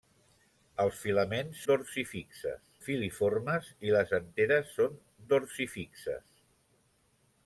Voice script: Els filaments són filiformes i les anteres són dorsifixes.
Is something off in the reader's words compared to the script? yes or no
yes